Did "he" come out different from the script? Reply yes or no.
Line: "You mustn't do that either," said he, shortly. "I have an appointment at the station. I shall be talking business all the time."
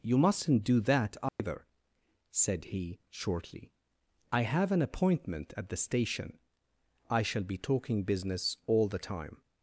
no